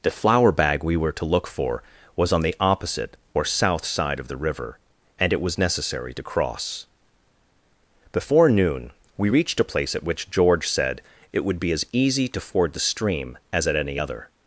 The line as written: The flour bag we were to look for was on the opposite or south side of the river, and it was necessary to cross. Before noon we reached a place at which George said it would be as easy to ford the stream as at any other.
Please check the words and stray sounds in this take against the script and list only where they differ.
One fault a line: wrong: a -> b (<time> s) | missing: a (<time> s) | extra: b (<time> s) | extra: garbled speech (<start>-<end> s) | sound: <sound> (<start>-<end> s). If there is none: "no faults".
no faults